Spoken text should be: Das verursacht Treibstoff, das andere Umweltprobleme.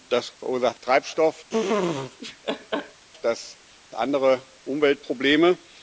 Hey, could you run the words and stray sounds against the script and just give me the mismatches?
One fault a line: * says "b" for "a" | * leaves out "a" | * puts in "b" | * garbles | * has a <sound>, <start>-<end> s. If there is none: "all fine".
* has a laugh, 1.5-3.0 s